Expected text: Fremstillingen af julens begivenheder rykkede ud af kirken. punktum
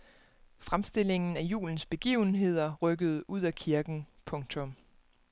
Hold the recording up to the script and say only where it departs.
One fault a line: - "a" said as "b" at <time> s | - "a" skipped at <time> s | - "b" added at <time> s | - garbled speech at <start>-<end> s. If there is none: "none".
none